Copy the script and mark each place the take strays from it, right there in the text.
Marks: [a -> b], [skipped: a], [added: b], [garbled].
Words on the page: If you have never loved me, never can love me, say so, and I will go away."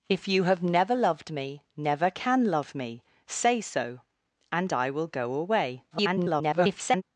If you have never loved me, never can love me, say so, and I will go away." [garbled]